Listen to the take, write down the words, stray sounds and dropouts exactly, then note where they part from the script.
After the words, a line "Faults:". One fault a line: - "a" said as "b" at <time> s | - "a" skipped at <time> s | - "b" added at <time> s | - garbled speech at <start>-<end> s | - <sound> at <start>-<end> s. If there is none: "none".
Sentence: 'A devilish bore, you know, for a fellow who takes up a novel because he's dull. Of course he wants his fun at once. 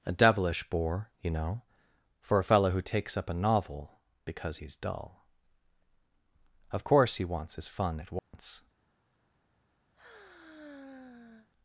'A devilish bore, you know, for a fellow who takes up a novel because he's dull. Of course he wants his fun at once.
Faults:
- dropout at 8.2-8.3 s
- sigh at 9.9-11.5 s